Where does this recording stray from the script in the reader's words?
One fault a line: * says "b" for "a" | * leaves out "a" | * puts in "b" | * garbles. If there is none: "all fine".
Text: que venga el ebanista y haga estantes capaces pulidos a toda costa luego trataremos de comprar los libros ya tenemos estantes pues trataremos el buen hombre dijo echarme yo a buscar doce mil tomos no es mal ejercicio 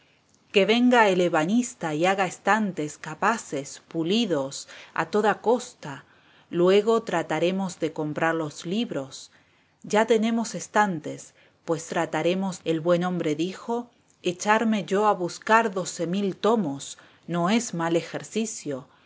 all fine